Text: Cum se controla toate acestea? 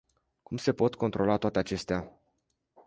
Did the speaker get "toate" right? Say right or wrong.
right